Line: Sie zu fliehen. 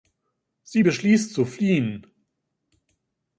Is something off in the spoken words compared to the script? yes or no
yes